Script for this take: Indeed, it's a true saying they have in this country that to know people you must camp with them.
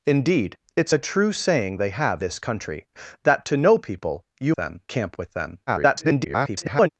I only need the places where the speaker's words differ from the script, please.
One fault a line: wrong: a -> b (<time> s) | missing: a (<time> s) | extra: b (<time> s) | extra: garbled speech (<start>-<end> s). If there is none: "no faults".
missing: in (2.2 s)
wrong: must -> them (4.6 s)
extra: garbled speech (5.7-6.9 s)